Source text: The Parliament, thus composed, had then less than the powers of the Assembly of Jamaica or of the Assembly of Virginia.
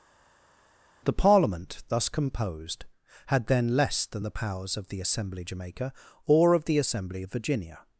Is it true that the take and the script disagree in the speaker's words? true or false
true